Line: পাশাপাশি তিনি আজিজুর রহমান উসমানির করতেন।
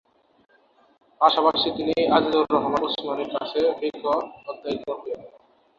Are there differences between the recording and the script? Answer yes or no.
yes